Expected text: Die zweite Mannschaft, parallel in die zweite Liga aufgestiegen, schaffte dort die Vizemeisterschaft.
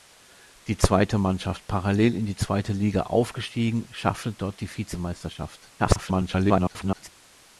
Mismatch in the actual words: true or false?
true